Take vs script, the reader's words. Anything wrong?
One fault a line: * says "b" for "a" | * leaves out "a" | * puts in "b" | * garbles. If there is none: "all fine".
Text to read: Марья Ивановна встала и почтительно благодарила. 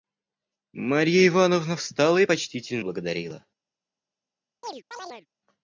all fine